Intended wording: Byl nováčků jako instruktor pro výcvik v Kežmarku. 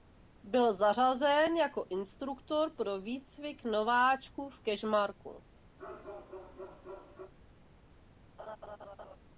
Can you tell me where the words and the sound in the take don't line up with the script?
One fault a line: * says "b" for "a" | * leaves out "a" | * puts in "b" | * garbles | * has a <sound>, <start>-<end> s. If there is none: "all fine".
* says "zařazen" for "nováčků"
* puts in "nováčků"
* has a bark, 5.8-7.3 s
* has a laugh, 8.4-9.2 s